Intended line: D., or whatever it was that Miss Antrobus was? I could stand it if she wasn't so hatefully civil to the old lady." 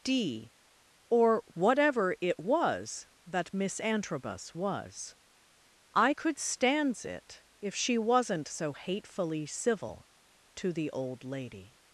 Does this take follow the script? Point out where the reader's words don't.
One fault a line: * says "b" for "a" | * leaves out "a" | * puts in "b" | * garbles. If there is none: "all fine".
* says "stands" for "stand"